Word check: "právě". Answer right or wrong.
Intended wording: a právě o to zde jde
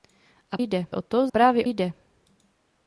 wrong